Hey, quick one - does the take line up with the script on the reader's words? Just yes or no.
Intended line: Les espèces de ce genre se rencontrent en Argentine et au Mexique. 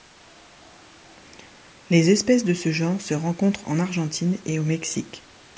yes